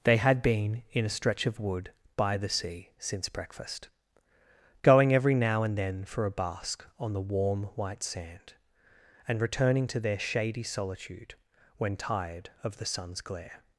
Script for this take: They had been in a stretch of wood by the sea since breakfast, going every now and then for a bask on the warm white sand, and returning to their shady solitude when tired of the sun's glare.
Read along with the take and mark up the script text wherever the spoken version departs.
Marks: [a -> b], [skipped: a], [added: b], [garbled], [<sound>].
They had been in a stretch of wood by the sea since breakfast, going every now and then for a bask on the warm white sand, and returning to their shady solitude when tired of the sun's glare.